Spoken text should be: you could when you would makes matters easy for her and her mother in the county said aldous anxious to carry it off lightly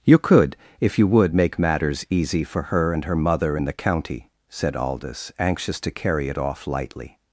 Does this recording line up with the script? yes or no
no